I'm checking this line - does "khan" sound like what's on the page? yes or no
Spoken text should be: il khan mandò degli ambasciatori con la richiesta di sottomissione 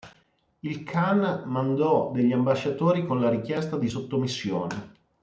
yes